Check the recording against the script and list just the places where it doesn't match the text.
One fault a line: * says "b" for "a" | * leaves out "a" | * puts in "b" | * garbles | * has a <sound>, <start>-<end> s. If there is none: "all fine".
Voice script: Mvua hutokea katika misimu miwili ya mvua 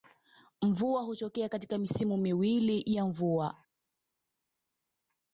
all fine